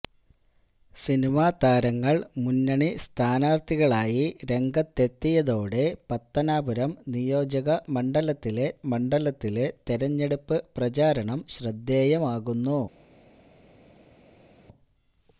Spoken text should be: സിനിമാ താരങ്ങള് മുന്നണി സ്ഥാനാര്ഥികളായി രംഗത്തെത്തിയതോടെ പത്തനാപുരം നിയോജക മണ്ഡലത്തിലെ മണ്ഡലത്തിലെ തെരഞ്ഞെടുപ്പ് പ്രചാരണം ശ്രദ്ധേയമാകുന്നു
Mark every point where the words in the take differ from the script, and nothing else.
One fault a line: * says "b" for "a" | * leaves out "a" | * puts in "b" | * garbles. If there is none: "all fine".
all fine